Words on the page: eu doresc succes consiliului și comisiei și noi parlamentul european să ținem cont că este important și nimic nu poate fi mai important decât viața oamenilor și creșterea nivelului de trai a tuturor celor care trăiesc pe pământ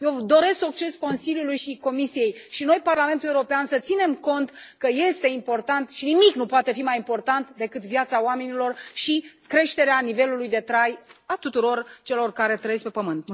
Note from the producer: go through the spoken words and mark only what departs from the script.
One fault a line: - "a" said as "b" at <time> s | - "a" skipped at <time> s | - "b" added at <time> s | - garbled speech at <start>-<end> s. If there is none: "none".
none